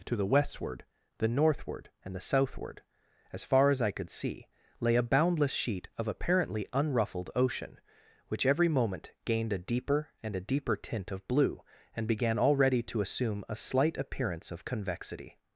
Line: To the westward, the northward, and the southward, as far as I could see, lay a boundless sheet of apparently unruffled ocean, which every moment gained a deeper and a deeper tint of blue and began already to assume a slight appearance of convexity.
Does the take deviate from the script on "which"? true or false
false